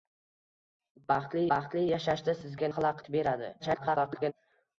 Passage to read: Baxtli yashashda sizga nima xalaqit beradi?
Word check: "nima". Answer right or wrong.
wrong